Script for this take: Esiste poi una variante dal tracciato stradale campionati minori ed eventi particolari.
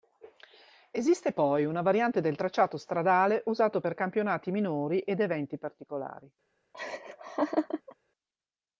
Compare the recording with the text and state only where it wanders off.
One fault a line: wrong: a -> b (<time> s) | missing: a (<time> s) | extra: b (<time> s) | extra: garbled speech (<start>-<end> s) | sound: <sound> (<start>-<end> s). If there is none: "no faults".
wrong: dal -> del (2.2 s)
extra: usato per (3.5 s)
sound: laugh (6.7-8.0 s)